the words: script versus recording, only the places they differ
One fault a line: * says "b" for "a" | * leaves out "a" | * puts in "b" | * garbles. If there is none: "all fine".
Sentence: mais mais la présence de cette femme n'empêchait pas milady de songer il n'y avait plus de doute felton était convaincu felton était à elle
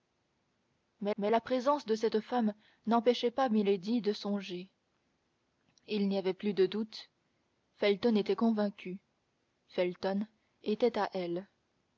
all fine